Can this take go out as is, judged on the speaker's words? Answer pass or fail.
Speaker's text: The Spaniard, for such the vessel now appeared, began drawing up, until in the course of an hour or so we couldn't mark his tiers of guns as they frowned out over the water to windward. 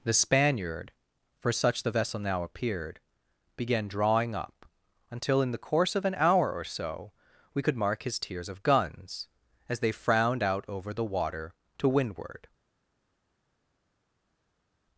fail